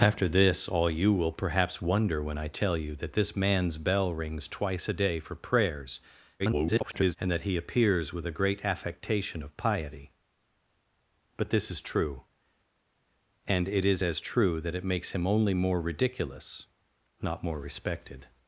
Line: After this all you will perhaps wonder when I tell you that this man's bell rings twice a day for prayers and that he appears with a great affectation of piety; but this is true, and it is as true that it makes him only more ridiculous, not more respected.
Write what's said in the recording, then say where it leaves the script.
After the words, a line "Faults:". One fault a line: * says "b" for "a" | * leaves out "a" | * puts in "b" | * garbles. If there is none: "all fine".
After this all you will perhaps wonder when I tell you that this man's bell rings twice a day for prayers [garbled] and that he appears with a great affectation of piety; but this is true, and it is as true that it makes him only more ridiculous, not more respected.
Faults:
* garbles